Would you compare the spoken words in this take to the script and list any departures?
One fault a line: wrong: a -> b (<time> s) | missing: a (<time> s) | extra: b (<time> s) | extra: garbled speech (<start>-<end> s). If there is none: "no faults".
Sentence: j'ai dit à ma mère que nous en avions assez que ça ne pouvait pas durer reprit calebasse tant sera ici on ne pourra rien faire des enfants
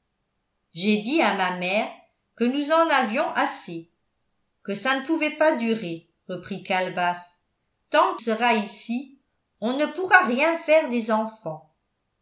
no faults